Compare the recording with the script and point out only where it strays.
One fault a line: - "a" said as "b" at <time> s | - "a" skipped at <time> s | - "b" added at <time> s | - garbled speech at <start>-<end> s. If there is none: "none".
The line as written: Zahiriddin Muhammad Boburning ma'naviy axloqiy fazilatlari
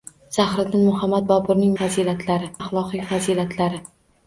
- "ma'naviy" said as "fazilatlari" at 1.8 s